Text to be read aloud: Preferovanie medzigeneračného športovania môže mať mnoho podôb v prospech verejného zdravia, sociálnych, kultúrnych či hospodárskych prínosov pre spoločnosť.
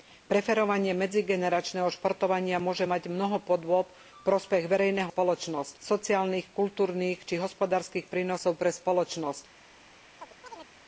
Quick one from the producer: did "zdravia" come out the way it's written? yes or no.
no